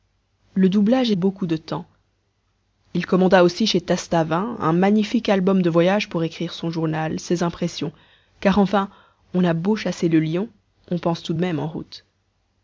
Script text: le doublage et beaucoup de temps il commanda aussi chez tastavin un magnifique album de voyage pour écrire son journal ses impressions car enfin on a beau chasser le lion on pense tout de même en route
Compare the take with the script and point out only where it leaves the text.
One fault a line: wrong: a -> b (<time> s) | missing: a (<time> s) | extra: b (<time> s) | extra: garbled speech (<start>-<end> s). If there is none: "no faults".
no faults